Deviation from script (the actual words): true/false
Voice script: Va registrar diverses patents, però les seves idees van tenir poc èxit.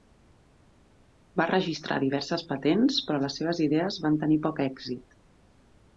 false